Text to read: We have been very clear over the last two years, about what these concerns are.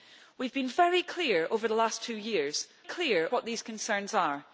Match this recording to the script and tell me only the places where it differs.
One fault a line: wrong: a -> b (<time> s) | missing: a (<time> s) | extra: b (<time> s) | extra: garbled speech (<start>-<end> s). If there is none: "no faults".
wrong: about -> clear (2.8 s)